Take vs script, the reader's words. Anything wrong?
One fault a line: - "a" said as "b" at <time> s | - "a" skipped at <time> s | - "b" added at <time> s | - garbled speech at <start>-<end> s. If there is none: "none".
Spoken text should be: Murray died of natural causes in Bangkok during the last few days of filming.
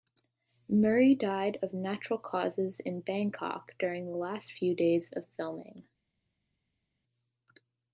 none